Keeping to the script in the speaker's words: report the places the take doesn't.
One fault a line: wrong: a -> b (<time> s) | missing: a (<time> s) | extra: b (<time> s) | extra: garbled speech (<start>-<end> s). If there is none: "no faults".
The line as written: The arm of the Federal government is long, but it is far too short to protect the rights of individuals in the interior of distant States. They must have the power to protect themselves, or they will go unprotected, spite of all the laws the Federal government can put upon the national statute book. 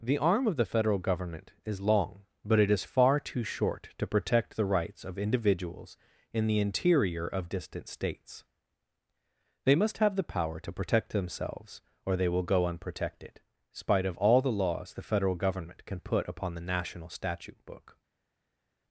no faults